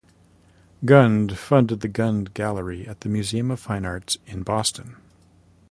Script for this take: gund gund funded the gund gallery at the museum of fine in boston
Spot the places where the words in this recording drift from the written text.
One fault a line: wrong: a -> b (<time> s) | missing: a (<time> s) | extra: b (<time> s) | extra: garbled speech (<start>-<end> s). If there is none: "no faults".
missing: gund (1.4 s)
extra: arts (3.8 s)